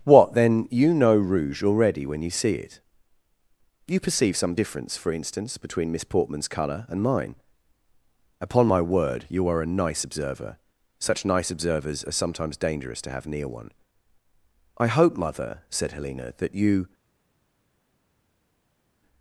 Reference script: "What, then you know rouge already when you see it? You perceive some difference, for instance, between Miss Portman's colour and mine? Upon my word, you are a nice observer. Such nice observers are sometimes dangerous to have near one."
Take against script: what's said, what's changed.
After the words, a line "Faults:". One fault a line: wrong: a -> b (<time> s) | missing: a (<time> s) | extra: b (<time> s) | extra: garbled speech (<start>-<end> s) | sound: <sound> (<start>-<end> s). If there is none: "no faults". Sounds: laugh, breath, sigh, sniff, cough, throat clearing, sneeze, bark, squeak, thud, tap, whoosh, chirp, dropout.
"What, then you know rouge already when you see it? You perceive some difference, for instance, between Miss Portman's colour and mine? Upon my word, you are a nice observer. Such nice observers are sometimes dangerous to have near one." "I hope, mother," said Helena, "that you
Faults:
extra: I hope mother said Helena that you (14.8 s)